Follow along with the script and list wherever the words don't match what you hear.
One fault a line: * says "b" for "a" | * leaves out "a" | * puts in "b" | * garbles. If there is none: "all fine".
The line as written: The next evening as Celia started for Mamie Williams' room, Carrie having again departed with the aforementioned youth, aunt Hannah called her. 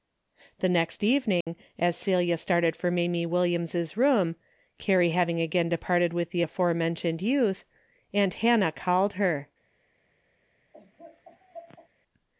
all fine